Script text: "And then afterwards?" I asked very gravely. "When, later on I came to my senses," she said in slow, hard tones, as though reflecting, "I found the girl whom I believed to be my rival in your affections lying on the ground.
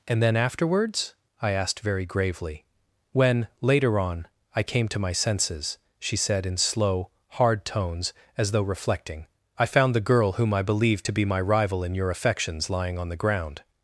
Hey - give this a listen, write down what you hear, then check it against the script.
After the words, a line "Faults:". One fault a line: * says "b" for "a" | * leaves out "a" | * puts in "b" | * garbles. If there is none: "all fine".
"And then afterwards?" I asked very gravely. "When, later on I came to my senses," she said in slow, hard tones, as though reflecting, "I found the girl whom I believed to be my rival in your affections lying on the ground.
Faults:
all fine